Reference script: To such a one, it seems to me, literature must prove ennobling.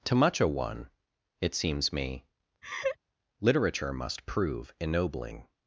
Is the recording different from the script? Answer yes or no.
yes